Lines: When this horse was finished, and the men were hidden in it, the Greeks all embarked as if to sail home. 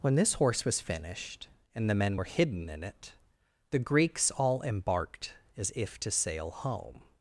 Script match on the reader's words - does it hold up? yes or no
yes